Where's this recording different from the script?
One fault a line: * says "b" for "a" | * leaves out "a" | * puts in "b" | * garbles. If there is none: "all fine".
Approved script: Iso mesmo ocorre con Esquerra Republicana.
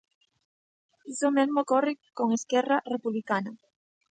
all fine